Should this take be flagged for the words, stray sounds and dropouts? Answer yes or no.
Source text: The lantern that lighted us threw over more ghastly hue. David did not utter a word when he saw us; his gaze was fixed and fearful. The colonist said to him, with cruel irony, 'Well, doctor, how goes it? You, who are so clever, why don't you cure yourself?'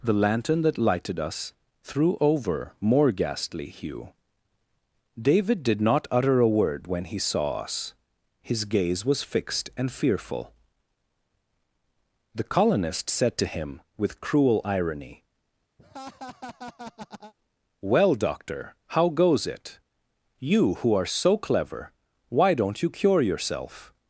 yes